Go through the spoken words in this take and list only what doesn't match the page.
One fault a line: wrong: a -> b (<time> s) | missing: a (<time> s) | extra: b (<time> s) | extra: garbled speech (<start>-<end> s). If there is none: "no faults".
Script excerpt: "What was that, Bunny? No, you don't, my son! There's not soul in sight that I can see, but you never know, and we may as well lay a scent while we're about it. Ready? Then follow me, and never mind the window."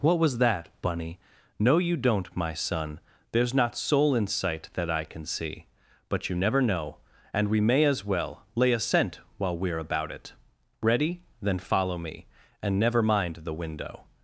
no faults